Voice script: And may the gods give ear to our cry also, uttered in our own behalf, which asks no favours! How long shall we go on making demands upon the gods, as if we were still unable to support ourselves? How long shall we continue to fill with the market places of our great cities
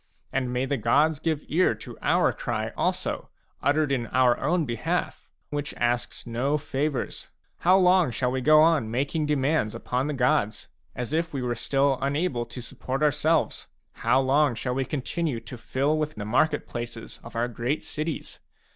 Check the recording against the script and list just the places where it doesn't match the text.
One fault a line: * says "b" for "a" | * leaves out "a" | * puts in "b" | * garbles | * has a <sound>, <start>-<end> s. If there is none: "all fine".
all fine